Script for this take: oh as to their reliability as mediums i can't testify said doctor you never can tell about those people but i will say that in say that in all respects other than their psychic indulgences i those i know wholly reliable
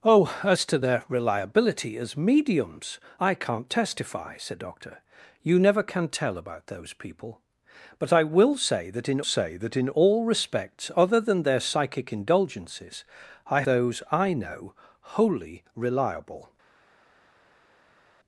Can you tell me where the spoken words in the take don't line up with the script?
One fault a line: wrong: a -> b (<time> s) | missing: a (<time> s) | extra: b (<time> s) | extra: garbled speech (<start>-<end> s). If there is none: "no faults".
no faults